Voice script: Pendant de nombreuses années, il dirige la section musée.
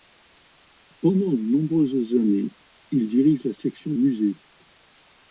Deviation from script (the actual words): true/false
false